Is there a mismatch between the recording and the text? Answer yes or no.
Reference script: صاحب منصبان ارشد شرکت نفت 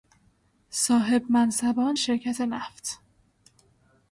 yes